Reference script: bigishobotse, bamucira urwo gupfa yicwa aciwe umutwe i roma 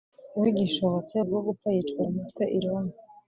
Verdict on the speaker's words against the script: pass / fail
fail